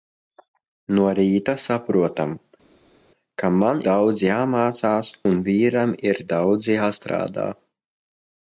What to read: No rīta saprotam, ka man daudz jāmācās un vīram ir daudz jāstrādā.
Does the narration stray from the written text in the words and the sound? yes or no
no